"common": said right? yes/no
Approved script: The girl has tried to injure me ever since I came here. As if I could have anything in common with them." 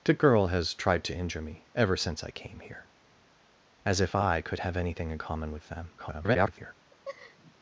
yes